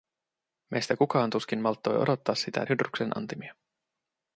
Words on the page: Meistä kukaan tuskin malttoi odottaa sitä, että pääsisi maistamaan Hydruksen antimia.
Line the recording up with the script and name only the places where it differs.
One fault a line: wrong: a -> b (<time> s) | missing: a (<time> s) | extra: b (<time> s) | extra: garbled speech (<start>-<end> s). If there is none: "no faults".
missing: että pääsisi maistamaan (2.6 s)